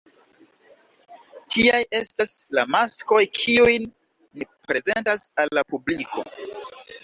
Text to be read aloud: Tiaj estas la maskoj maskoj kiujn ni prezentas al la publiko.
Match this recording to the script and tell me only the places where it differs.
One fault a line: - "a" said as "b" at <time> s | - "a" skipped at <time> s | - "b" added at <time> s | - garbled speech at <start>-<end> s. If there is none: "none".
- "maskoj" skipped at 3.2 s